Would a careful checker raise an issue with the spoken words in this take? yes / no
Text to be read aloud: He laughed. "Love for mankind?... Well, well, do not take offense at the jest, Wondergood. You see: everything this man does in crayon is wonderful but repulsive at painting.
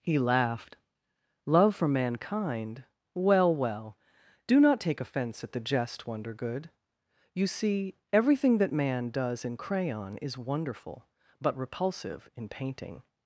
yes